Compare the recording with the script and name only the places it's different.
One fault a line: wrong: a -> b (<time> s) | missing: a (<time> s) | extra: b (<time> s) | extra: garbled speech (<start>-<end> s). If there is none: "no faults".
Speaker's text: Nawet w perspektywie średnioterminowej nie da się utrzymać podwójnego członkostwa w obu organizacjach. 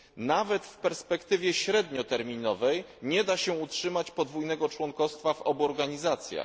no faults